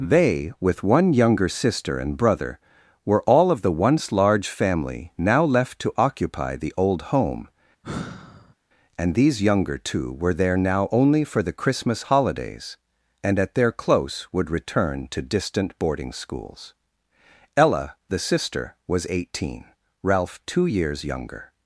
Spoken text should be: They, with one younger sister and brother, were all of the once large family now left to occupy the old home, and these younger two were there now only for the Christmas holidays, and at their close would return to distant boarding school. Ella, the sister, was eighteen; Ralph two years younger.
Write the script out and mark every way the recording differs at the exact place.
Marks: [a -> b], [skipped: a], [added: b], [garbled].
They, with one younger sister and brother, were all of the once large family now left to occupy the old home, and these younger two were there now only for the Christmas holidays, and at their close would return to distant boarding [school. -> schools] Ella, the sister, was eighteen; Ralph two years younger.